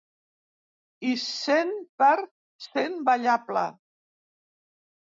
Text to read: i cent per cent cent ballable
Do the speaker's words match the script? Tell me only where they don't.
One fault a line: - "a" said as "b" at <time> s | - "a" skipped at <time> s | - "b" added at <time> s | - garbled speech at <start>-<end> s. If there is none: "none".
- "cent" skipped at 3.0 s